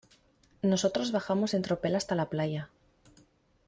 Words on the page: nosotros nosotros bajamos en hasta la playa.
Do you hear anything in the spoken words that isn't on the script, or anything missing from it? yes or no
yes